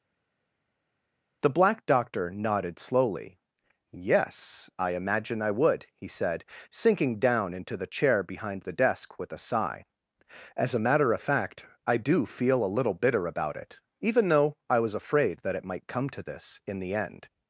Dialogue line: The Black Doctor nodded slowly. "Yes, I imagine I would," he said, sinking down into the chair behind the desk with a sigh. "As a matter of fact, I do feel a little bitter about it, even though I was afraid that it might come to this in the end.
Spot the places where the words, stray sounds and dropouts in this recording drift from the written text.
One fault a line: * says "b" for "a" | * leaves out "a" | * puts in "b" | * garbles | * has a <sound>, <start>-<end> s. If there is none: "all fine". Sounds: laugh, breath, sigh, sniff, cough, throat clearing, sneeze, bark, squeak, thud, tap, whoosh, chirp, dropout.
all fine